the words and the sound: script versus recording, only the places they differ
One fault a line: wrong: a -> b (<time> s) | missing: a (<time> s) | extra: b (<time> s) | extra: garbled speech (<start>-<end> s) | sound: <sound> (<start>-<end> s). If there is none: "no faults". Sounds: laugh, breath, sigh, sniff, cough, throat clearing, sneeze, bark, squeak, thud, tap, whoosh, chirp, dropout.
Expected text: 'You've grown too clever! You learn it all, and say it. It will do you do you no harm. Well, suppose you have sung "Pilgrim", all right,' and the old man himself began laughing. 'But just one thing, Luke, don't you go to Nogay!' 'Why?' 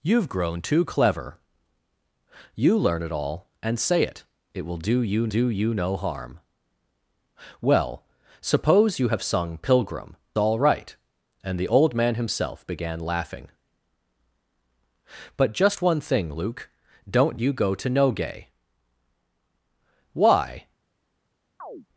sound: chirp (21.6-21.9 s)